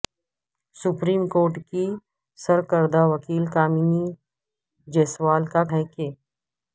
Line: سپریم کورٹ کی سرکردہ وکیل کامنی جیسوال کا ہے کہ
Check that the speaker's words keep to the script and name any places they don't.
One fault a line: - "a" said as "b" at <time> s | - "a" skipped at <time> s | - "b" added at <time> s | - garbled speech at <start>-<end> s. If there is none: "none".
none